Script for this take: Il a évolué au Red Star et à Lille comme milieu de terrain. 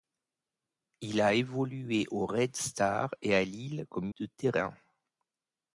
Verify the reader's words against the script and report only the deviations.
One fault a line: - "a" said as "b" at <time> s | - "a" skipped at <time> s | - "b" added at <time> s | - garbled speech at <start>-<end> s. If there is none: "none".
- "milieu" skipped at 4.1 s